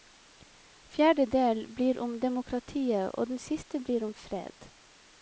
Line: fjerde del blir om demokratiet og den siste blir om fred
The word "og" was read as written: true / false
true